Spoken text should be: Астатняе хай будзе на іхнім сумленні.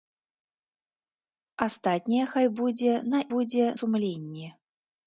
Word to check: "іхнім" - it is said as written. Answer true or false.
false